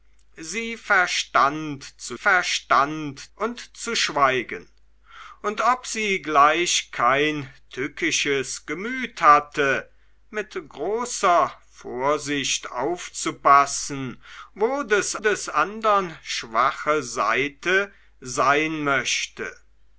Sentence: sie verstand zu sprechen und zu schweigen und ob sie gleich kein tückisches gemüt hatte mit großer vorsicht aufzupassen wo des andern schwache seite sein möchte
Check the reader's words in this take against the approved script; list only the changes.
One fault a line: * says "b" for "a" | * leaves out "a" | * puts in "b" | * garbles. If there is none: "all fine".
* says "verstand" for "sprechen"
* puts in "des"